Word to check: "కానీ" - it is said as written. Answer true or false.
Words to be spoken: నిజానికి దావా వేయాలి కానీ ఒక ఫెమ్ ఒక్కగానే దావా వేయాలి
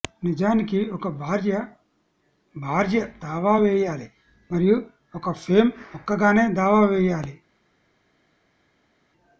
false